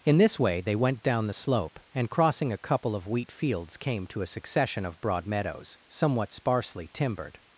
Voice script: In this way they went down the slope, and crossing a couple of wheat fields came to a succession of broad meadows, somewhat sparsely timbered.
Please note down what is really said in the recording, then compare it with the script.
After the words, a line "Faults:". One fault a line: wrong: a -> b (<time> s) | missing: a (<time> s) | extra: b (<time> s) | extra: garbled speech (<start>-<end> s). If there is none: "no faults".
In this way they went down the slope, and crossing a couple of wheat fields came to a succession of broad meadows, somewhat sparsely timbered.
Faults:
no faults